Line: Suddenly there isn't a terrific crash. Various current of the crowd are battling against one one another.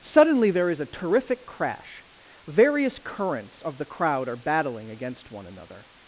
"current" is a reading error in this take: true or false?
true